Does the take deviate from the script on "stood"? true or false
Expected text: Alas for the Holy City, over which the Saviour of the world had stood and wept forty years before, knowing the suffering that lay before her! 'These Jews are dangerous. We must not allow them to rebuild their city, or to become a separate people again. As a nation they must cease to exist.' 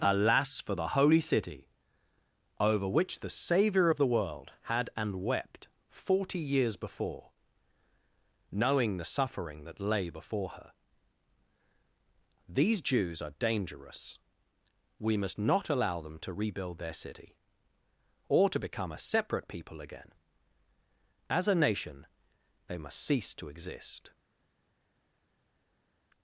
true